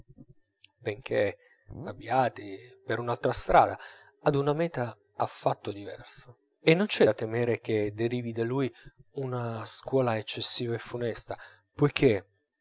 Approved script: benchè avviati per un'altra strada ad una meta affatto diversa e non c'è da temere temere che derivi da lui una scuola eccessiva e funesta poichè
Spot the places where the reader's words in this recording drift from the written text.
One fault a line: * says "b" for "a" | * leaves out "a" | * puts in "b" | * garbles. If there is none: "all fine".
* leaves out "temere"